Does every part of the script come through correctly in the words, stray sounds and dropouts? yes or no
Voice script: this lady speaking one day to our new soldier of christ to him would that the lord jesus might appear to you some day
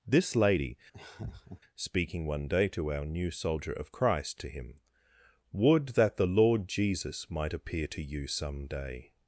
no